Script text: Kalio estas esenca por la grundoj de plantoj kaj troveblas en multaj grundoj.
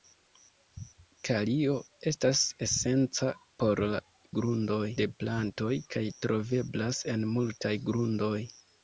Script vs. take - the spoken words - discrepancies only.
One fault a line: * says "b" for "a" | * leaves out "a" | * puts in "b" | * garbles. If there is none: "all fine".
all fine